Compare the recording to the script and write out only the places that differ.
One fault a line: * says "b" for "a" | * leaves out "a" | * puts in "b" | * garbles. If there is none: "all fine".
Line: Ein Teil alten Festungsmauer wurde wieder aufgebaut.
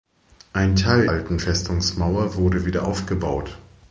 all fine